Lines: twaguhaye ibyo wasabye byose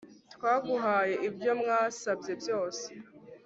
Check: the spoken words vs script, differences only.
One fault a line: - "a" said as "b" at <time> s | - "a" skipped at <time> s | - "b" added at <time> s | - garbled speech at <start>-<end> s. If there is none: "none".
none